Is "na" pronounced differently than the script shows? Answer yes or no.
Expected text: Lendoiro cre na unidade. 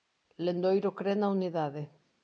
no